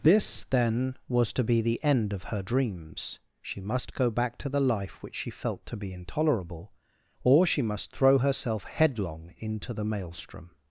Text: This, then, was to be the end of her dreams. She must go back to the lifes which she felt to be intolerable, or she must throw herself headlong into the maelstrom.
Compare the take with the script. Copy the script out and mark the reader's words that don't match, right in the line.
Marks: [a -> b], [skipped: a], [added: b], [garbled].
This, then, was to be the end of her dreams. She must go back to the [lifes -> life] which she felt to be intolerable, or she must throw herself headlong into the maelstrom.